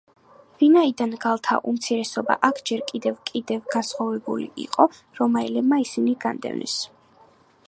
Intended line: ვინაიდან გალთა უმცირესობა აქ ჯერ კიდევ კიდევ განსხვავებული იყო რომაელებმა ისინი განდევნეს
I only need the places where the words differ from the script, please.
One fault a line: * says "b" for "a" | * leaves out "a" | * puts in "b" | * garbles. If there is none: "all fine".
all fine